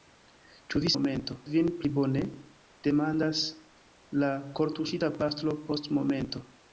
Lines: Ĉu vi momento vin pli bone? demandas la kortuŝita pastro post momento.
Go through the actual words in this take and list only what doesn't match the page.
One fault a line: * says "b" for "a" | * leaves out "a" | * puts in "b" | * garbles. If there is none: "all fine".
all fine